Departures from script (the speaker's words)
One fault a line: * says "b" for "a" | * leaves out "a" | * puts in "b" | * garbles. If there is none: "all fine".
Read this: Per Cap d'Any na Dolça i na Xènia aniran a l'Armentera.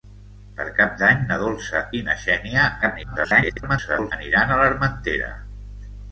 * garbles